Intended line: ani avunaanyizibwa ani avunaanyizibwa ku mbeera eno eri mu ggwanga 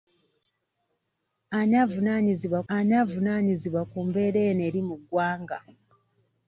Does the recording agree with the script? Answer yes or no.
yes